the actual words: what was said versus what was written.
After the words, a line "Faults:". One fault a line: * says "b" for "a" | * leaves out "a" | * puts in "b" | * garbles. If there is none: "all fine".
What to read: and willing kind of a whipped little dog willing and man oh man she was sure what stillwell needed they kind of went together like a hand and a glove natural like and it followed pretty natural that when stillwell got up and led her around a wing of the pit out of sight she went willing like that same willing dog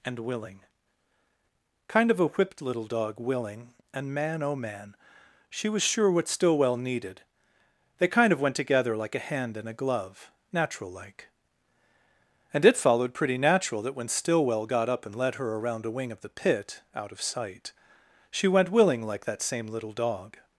and willing kind of a whipped little dog willing and man oh man she was sure what stillwell needed they kind of went together like a hand and a glove natural like and it followed pretty natural that when stillwell got up and led her around a wing of the pit out of sight she went willing like that same little dog
Faults:
* says "little" for "willing"